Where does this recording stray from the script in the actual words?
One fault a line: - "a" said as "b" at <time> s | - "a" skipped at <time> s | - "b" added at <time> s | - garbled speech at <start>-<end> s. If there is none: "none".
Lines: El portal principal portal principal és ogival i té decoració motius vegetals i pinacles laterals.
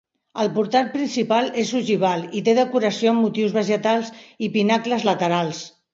- "portal principal" skipped at 1.5 s
- "amb" added at 3.1 s